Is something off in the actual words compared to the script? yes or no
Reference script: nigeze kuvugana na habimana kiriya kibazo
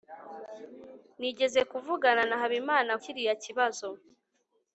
no